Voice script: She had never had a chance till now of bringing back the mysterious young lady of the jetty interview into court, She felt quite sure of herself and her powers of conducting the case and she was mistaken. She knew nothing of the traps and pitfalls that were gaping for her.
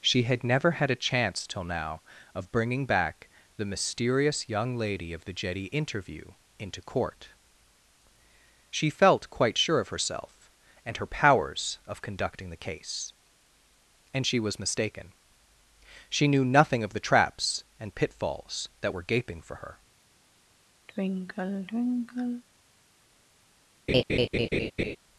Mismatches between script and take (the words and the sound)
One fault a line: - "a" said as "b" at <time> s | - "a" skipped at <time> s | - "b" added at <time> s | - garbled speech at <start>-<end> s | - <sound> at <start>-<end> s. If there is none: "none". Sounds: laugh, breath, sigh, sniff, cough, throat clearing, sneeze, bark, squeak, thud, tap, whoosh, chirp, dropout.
- sigh at 20.9-22.4 s
- laugh at 23.9-25.0 s